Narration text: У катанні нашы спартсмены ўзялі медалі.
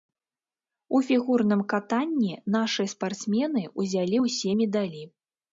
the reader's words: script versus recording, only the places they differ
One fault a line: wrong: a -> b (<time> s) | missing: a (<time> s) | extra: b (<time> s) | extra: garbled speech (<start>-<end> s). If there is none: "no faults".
extra: фігурным (1.1 s)
extra: ўсе (4.2 s)